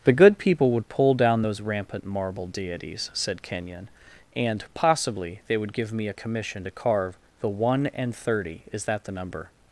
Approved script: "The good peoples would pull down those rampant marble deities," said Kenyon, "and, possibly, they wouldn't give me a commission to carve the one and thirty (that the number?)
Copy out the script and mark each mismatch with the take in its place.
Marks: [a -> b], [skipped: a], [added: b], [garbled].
"The good [peoples -> people] would pull down those rampant marble deities," said Kenyon, "and, possibly, they [wouldn't -> would] give me a commission to carve the one and thirty [added: is] (that the number?)